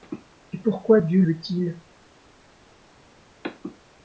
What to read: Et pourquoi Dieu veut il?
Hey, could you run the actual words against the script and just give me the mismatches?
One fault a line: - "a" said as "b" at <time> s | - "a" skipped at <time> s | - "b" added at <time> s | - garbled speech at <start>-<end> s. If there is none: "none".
none